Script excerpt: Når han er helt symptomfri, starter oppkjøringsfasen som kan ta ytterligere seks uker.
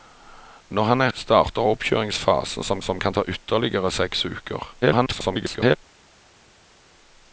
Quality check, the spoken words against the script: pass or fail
fail